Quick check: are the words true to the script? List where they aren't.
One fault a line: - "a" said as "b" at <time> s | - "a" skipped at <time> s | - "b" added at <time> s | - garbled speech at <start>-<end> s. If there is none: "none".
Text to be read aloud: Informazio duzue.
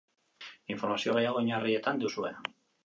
- "gehiago oinarrietan" added at 1.2 s